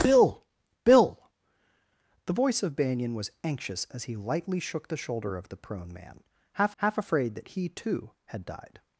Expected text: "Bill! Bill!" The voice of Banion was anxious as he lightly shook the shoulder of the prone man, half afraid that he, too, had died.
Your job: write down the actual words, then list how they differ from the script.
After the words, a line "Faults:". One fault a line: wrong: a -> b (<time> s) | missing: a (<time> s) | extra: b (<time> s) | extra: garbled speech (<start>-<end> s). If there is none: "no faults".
"Bill! Bill!" The voice of Banion was anxious as he lightly shook the shoulder of the prone man, half half afraid that he, too, had died.
Faults:
extra: half (6.8 s)